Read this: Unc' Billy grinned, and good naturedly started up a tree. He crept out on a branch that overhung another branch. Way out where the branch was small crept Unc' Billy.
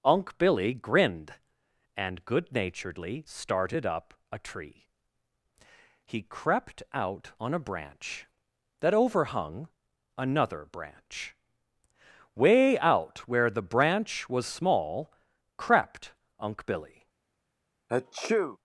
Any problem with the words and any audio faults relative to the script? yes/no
yes